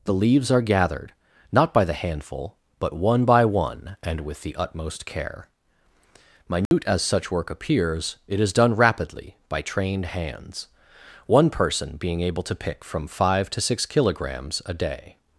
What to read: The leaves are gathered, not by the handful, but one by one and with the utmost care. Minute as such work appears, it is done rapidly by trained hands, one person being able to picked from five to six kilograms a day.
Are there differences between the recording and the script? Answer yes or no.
yes